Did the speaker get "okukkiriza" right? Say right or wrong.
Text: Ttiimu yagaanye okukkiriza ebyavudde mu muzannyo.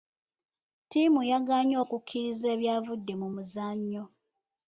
right